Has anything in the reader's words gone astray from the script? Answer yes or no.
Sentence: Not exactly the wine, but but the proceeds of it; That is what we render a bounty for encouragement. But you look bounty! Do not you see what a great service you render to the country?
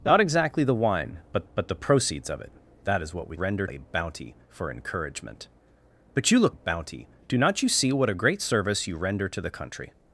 no